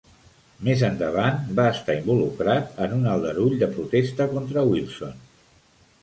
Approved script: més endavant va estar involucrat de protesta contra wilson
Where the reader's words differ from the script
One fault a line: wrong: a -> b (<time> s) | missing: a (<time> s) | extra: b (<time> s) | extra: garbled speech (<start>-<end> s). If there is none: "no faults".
extra: en un aldarull (2.8 s)